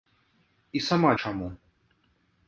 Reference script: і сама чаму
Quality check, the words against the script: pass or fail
pass